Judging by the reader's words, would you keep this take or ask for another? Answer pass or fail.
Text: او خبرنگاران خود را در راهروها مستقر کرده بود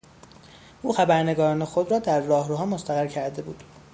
pass